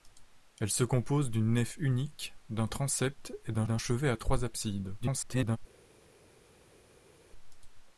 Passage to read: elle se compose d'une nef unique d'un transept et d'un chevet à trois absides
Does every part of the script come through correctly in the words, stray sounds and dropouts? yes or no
no